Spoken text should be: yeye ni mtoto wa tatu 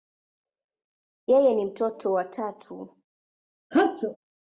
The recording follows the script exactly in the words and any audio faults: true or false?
false